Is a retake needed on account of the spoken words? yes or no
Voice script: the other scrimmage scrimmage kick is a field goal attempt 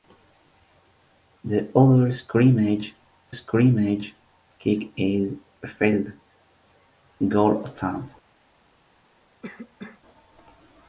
no